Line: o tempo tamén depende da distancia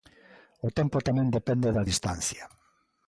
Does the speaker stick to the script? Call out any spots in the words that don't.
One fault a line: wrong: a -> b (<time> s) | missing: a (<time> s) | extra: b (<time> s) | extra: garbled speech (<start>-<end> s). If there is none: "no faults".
no faults